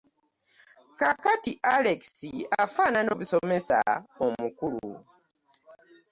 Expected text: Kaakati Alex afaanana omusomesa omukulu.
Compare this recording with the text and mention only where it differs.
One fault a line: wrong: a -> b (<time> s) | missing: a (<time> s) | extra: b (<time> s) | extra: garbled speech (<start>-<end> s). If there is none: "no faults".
no faults